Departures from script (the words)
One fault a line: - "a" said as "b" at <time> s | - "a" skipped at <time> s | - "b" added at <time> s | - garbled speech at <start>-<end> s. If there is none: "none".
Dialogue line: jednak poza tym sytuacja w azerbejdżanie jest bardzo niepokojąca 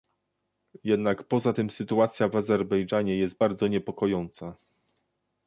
none